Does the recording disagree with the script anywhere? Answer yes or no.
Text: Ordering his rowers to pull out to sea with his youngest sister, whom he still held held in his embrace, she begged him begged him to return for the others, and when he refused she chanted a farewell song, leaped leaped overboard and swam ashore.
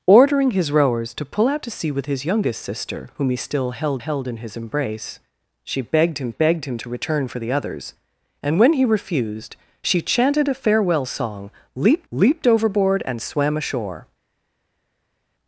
no